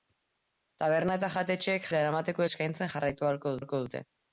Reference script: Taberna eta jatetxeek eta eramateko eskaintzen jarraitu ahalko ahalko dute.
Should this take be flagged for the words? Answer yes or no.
no